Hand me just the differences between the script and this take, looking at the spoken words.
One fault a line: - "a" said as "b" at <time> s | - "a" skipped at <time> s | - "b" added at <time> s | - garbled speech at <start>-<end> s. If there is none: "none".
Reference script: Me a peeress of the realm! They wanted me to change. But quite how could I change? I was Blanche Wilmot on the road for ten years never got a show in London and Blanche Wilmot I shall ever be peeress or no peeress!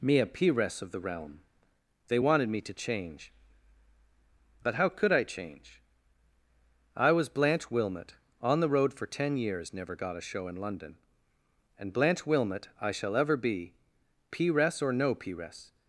- "quite" skipped at 4.8 s